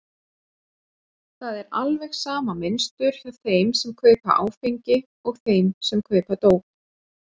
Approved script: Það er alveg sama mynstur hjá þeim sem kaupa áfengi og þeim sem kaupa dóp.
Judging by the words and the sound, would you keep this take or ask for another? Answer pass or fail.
pass